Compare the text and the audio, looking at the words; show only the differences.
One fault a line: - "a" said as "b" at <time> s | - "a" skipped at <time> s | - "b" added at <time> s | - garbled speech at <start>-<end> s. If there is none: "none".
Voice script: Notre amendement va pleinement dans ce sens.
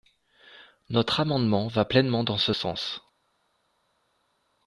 none